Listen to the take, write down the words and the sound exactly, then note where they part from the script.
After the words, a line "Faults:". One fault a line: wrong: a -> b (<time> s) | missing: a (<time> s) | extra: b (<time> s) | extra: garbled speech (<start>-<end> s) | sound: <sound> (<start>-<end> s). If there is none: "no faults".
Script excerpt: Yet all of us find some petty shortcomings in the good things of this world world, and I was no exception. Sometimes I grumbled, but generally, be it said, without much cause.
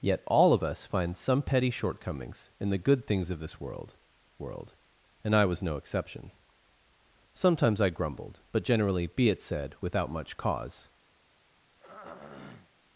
Yet all of us find some petty shortcomings in the good things of this world world, and I was no exception. Sometimes I grumbled, but generally, be it said, without much cause.
Faults:
sound: throat clearing (11.8-12.7 s)